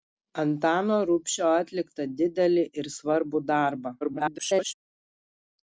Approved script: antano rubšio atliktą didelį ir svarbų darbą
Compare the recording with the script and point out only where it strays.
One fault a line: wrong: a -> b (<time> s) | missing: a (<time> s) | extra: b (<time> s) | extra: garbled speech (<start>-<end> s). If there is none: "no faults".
extra: garbled speech (4.0-4.7 s)